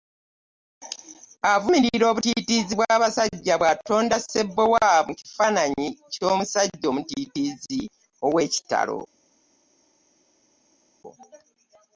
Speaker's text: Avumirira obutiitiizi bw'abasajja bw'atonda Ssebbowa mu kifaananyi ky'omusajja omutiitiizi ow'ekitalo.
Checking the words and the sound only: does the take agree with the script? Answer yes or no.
yes